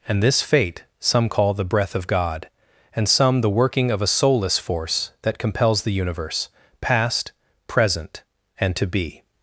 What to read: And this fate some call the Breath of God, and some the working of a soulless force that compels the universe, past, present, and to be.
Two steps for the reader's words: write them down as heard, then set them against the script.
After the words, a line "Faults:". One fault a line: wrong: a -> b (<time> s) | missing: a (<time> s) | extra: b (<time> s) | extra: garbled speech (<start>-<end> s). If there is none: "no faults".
And this fate some call the Breath of God, and some the working of a soulless force that compels the universe, past, present, and to be.
Faults:
no faults